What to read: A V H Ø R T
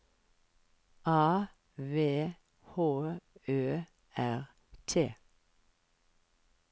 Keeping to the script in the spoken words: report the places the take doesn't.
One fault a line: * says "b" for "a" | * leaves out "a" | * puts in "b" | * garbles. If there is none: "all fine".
all fine